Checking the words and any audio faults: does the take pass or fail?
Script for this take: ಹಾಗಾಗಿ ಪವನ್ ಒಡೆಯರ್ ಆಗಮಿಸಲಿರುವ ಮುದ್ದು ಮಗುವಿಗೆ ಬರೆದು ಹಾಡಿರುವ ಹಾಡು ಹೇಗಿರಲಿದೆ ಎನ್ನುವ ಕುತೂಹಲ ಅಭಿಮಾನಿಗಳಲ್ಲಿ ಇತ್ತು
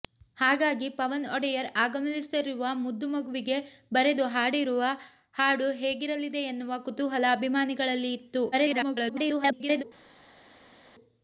fail